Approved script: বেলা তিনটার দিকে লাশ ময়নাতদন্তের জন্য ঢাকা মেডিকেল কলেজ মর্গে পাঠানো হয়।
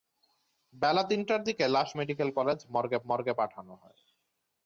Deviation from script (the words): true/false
true